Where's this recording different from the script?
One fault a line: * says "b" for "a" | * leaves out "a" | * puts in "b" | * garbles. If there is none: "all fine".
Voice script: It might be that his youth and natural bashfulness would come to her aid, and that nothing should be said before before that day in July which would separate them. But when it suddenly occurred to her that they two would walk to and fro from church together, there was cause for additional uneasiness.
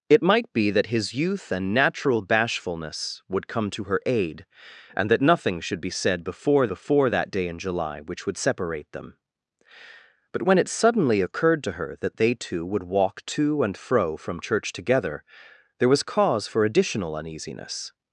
all fine